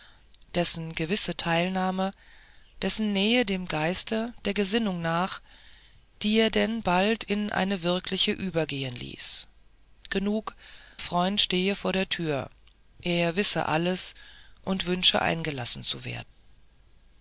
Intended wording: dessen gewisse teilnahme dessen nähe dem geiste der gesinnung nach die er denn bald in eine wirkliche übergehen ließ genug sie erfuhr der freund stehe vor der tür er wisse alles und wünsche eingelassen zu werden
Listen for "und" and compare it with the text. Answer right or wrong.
right